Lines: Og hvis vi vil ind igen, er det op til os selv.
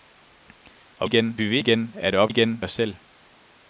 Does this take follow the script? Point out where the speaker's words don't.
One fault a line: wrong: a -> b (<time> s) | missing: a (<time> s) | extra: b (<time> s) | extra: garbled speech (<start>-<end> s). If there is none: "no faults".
wrong: hvis -> igen (1.0 s)
missing: ind (1.6 s)
wrong: til -> igen (2.3 s)